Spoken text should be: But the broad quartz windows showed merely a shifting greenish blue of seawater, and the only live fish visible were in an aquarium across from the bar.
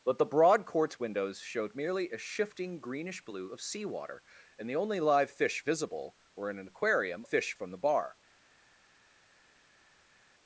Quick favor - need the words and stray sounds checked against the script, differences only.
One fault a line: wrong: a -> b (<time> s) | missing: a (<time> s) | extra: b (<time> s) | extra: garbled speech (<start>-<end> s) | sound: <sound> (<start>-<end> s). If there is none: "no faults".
wrong: across -> fish (7.2 s)